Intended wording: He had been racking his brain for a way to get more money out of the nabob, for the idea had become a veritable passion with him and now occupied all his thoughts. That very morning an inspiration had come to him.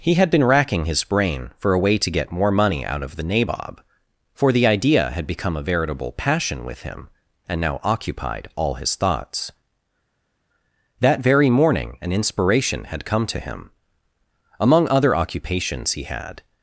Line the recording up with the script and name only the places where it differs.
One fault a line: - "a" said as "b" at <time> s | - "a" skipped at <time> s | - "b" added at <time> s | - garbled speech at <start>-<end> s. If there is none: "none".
- "Among other occupations he had" added at 14.6 s